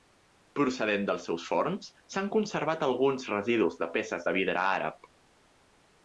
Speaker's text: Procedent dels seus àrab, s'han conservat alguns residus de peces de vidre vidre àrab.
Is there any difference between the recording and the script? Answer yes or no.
yes